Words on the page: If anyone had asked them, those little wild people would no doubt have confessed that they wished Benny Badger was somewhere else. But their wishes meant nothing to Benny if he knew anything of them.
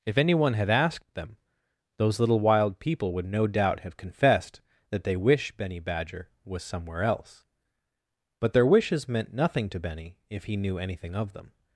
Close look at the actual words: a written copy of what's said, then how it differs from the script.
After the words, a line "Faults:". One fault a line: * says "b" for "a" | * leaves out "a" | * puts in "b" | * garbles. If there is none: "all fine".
If anyone had asked them, those little wild people would no doubt have confessed that they wish Benny Badger was somewhere else. But their wishes meant nothing to Benny if he knew anything of them.
Faults:
* says "wish" for "wished"